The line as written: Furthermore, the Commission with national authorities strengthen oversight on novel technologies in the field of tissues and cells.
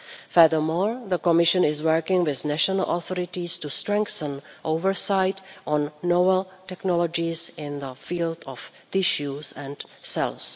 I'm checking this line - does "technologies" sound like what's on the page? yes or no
yes